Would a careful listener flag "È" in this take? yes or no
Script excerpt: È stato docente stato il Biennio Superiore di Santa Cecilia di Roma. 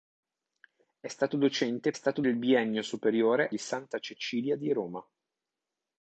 no